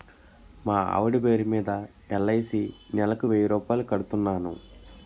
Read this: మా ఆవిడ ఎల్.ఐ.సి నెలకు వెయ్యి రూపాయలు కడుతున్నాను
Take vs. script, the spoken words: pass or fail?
fail